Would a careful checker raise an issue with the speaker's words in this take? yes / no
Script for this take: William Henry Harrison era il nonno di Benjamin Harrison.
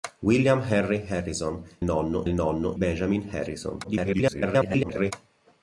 yes